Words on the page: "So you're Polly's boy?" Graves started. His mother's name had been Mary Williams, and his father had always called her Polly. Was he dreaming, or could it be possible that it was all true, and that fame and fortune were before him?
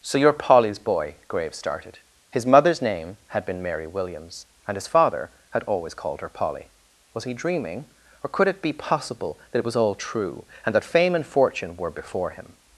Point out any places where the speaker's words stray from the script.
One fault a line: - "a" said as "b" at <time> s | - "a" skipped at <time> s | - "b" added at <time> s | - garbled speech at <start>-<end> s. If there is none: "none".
none